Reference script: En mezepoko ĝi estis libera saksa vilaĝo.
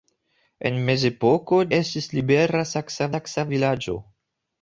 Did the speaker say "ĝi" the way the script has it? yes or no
no